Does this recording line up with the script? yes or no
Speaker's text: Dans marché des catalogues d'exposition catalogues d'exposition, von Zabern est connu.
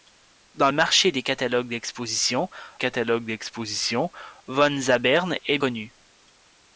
yes